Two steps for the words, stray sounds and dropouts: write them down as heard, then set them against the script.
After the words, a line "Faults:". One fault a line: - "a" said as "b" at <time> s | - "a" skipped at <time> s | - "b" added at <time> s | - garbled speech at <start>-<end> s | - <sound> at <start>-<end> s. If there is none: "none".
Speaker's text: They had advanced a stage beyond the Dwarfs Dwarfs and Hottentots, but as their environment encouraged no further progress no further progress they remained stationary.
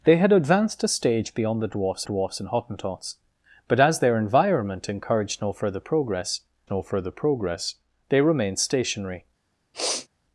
They had advanced a stage beyond the Dwarfs Dwarfs and Hottentots, but as their environment encouraged no further progress no further progress they remained stationary.
Faults:
- sniff at 9.7-10.1 s